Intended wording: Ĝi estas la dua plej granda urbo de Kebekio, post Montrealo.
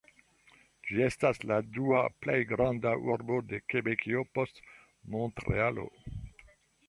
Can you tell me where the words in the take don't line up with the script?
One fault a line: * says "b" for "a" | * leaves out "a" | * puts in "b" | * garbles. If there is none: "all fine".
all fine